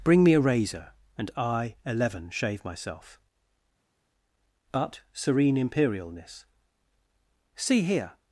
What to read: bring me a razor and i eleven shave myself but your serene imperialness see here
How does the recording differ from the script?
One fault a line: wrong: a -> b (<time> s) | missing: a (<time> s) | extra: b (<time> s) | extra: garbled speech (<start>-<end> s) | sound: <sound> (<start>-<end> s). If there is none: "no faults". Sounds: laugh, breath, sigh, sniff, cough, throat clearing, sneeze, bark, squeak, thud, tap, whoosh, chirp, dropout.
missing: your (5.0 s)